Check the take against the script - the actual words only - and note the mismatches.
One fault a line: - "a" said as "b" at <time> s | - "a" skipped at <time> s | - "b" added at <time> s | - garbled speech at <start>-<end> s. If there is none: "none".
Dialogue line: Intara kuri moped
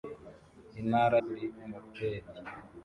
none